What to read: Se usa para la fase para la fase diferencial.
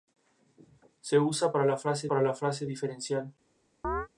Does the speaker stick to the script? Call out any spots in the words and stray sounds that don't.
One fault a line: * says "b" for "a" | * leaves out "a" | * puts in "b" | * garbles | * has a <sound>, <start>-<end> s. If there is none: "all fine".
* has a chirp, 3.8-4.1 s